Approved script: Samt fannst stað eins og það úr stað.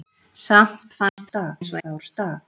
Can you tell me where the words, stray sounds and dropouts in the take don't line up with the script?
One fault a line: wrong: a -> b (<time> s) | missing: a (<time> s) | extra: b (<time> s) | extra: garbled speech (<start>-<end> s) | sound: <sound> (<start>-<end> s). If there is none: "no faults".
sound: dropout (1.1-1.2 s)